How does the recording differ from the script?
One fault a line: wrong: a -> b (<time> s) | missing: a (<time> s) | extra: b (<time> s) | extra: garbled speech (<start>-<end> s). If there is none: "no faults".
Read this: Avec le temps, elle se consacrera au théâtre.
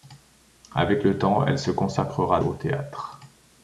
no faults